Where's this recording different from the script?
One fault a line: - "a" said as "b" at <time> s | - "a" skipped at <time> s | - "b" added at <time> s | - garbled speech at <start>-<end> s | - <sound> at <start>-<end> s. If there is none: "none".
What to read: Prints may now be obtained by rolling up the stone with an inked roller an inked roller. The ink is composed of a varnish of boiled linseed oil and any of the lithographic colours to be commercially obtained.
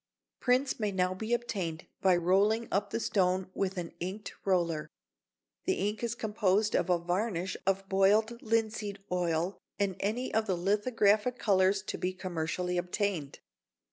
- "an inked roller" skipped at 4.9 s